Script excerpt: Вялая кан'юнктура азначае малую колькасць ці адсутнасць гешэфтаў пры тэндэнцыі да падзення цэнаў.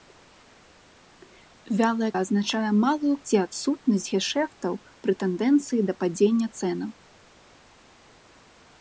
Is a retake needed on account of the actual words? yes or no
yes